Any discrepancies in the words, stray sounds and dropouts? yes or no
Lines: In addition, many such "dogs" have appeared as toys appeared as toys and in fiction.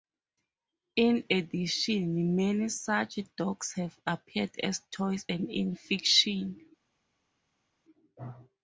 yes